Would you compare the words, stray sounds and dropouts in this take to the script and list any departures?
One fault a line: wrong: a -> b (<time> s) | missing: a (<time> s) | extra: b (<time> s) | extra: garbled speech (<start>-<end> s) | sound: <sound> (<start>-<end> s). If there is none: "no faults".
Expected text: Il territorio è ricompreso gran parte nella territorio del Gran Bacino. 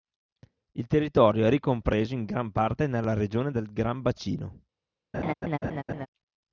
extra: in (2.1 s)
wrong: territorio -> regione (3.1 s)
sound: laugh (5.1-6.1 s)